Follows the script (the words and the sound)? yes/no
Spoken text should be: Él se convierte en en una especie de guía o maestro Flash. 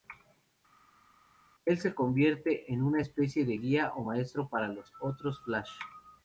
no